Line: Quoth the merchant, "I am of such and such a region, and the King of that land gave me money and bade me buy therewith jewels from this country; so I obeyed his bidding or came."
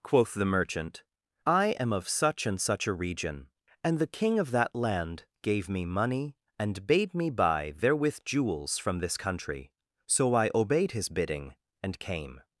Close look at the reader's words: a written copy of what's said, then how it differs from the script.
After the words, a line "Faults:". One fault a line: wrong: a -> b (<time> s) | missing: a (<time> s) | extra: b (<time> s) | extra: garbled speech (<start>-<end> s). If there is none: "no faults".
Quoth the merchant, "I am of such and such a region, and the King of that land gave me money and bade me buy therewith jewels from this country; so I obeyed his bidding and came."
Faults:
wrong: or -> and (11.8 s)